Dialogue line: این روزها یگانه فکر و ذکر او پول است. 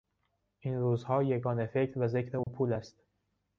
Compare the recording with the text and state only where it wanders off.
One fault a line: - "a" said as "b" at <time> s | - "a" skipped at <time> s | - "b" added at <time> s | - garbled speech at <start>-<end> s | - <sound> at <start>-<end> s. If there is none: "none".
- dropout at 2.4-2.5 s